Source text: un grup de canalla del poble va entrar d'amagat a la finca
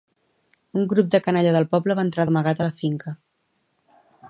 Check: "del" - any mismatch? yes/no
no